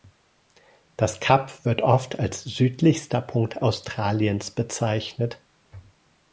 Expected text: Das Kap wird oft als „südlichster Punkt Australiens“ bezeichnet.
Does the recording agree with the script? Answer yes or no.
yes